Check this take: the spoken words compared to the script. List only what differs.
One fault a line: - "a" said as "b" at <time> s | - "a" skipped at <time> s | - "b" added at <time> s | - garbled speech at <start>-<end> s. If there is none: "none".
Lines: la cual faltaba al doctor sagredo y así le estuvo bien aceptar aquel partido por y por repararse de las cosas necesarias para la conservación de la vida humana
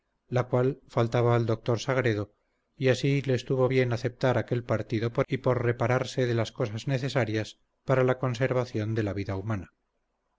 none